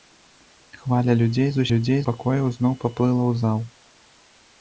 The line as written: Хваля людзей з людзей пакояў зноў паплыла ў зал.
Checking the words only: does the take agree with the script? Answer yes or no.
yes